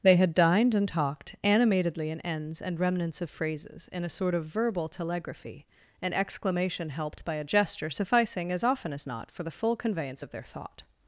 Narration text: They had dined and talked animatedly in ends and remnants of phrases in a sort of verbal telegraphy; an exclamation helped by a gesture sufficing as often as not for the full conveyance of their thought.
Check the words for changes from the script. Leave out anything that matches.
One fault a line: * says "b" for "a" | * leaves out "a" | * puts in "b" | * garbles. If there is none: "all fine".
all fine